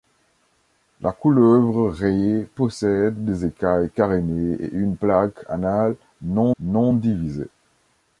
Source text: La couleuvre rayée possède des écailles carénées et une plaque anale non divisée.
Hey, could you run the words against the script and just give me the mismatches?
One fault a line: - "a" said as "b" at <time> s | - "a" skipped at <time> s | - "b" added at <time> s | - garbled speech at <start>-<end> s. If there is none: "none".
- "non" added at 6.6 s